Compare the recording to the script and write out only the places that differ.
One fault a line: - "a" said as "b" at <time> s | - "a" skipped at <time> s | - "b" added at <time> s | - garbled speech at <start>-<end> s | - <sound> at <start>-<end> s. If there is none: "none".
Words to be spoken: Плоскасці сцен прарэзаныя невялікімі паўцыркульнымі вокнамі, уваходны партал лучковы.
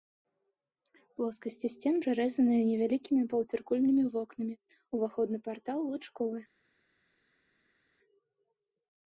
none